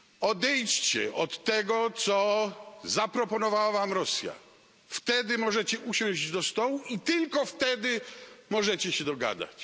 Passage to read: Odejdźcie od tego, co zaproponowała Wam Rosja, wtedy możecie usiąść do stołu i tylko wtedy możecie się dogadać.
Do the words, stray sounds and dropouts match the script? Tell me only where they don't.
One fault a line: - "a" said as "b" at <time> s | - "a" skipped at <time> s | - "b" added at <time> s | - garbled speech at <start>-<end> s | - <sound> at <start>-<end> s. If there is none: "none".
none